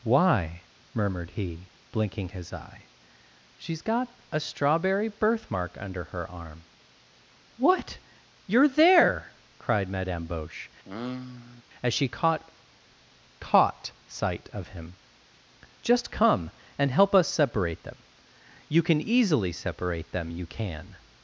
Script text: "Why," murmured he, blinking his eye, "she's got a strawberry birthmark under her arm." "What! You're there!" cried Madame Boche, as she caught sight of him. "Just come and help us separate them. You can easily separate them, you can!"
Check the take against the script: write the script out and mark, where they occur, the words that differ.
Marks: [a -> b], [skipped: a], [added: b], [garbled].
"Why," murmured he, blinking his eye, "she's got a strawberry birthmark under her arm." "What! You're there!" cried Madame Boche, as she caught [added: caught] sight of him. "Just come and help us separate them. You can easily separate them, you can!"